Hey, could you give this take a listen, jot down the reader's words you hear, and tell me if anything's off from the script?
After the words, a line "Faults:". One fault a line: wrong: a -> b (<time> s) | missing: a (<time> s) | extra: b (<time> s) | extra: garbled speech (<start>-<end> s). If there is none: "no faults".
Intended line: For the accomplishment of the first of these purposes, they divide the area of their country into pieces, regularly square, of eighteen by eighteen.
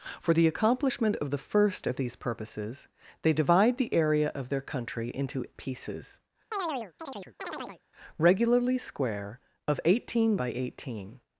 For the accomplishment of the first of these purposes, they divide the area of their country into pieces, regularly square, of eighteen by eighteen.
Faults:
no faults